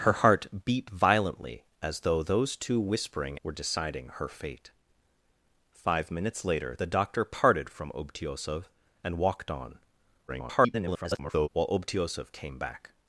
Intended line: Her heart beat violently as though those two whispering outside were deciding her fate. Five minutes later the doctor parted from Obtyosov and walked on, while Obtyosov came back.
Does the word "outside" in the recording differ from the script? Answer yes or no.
yes